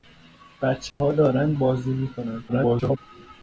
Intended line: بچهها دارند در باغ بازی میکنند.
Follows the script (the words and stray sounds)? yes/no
no